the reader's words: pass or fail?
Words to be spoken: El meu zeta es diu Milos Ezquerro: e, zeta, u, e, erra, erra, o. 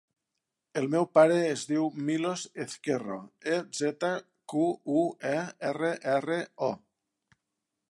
fail